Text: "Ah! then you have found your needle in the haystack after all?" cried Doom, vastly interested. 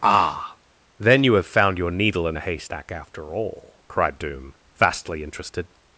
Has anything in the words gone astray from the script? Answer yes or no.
no